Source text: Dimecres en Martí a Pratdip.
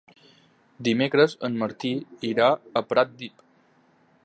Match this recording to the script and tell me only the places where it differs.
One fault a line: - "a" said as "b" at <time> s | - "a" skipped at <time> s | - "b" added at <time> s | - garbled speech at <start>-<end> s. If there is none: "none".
- "irà" added at 2.3 s